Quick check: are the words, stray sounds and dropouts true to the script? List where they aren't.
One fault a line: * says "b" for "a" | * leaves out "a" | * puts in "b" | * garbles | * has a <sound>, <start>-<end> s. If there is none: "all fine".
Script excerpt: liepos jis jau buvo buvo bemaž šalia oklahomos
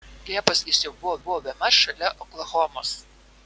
all fine